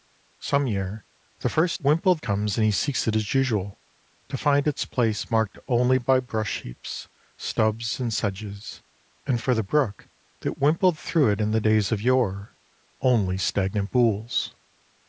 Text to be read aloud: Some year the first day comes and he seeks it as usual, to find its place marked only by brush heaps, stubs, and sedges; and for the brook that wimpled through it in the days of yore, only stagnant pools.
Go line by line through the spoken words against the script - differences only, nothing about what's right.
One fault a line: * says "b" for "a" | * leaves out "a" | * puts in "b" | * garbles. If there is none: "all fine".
* says "wimpled" for "day"